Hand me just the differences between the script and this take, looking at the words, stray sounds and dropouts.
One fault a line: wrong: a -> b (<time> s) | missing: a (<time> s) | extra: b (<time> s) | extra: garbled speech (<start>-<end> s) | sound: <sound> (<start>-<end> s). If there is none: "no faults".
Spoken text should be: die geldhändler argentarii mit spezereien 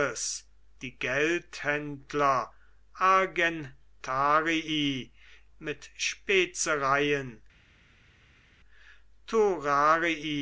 no faults